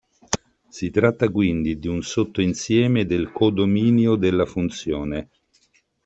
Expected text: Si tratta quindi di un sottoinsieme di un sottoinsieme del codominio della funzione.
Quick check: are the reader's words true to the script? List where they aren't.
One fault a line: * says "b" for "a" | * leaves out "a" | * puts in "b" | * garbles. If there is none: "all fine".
* leaves out "di un sottoinsieme"